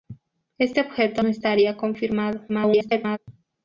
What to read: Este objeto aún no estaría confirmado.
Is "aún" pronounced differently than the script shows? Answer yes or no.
yes